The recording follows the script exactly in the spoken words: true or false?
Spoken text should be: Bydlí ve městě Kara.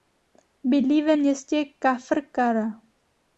false